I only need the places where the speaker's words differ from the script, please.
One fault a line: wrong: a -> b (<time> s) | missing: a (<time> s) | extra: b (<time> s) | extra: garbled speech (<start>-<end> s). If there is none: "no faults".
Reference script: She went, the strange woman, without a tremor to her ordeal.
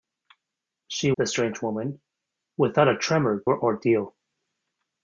missing: went (1.1 s)
missing: to (3.4 s)